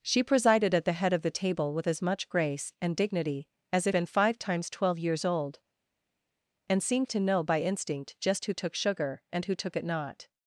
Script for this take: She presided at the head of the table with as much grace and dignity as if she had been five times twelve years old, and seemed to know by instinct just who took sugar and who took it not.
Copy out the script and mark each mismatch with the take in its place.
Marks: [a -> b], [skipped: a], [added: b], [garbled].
She presided at the head of the table with as much grace and dignity as if [skipped: she had] been five times twelve years old, and seemed to know by instinct just who took sugar and who took it not.